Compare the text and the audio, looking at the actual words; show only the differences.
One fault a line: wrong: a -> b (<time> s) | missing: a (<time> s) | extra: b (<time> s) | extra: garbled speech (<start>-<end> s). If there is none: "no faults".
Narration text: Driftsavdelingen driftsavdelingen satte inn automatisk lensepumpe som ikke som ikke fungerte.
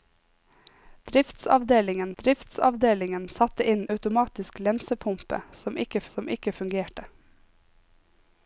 no faults